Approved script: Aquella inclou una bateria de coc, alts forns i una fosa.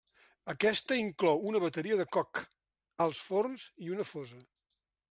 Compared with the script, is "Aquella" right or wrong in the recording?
wrong